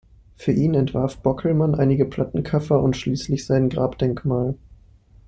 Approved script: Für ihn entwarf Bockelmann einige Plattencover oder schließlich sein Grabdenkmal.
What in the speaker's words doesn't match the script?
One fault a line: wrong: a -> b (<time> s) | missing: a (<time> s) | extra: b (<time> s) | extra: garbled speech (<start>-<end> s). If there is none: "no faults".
wrong: oder -> und (2.8 s)